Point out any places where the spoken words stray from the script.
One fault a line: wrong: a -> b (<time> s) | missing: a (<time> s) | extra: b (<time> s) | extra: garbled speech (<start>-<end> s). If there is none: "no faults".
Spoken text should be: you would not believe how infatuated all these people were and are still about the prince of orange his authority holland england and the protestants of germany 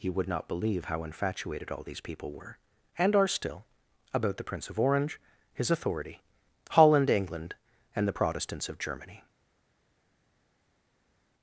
no faults